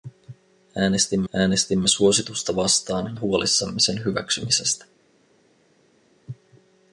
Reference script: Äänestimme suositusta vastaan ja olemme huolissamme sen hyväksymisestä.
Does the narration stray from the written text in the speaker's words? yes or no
yes